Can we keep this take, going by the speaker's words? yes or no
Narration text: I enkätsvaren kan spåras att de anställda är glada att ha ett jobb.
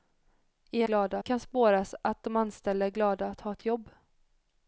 no